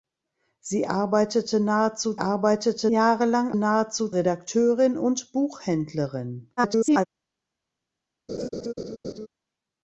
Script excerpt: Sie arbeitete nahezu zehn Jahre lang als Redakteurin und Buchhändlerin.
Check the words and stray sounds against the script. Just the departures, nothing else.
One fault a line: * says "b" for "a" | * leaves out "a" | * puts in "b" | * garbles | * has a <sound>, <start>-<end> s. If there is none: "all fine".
* says "arbeitete" for "zehn"
* says "nahezu" for "als"
* garbles
* has a laugh, 8.3-9.3 s